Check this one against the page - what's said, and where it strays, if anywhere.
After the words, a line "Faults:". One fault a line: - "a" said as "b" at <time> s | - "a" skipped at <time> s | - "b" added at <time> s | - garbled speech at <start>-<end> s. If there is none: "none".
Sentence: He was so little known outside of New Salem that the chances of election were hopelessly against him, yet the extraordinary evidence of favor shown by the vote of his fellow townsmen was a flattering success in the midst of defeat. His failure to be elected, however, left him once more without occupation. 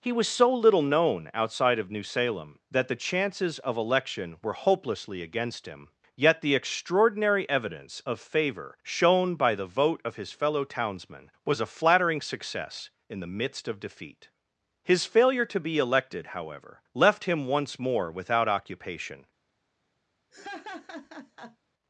He was so little known outside of New Salem that the chances of election were hopelessly against him, yet the extraordinary evidence of favor shown by the vote of his fellow townsmen was a flattering success in the midst of defeat. His failure to be elected, however, left him once more without occupation.
Faults:
none